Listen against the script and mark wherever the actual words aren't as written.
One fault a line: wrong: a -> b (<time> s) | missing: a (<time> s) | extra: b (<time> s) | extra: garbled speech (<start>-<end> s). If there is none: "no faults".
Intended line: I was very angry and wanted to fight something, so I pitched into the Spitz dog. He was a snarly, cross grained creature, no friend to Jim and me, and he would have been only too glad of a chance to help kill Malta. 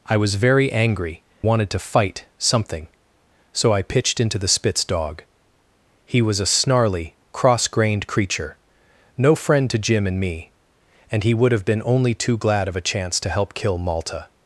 missing: and (1.2 s)